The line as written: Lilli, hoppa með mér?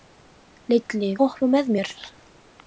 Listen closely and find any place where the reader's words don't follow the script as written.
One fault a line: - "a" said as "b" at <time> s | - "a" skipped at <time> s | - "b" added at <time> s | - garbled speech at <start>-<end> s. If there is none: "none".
none